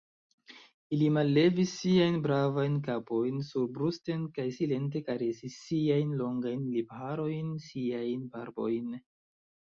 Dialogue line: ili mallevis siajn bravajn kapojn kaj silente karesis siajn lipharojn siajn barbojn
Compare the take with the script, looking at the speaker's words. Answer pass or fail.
fail